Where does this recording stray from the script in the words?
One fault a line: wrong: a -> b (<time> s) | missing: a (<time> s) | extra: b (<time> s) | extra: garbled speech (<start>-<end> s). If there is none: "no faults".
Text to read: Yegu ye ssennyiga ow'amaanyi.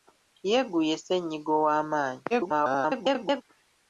extra: garbled speech (2.3-3.4 s)